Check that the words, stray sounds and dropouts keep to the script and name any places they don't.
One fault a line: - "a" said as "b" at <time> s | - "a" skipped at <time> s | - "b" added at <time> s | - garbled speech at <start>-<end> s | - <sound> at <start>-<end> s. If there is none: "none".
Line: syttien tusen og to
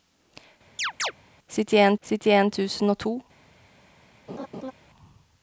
- chirp at 0.8-1.1 s
- "syttien" added at 2.0 s
- laugh at 4.3-4.7 s